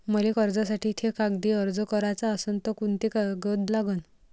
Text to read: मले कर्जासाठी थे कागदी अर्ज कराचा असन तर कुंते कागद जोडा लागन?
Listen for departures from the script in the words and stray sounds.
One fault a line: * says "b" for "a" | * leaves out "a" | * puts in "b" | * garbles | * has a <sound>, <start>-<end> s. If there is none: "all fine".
* leaves out "जोडा"